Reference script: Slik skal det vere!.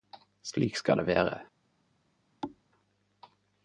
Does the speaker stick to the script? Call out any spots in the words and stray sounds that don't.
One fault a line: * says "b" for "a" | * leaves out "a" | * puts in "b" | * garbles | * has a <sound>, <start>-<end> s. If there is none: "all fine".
* has a thud, 2.4-2.6 s